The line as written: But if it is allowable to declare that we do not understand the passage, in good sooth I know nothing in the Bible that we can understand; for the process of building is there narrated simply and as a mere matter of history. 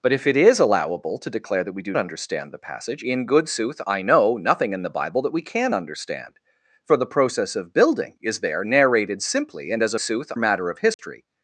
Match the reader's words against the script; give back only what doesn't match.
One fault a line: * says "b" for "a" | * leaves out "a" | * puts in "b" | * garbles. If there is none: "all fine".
* leaves out "not"
* says "sooth" for "mere"